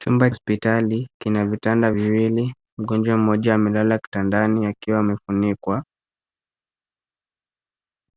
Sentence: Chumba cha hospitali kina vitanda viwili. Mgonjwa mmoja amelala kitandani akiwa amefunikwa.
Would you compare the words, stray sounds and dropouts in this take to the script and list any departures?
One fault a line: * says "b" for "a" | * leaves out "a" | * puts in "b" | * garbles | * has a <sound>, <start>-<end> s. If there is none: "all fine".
* leaves out "cha"